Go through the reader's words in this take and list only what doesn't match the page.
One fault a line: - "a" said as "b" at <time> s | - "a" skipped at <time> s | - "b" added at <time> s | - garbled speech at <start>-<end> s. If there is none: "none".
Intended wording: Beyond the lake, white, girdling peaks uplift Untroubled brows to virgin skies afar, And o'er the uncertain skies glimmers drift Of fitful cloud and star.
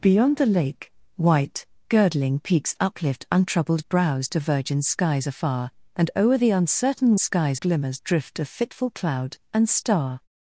none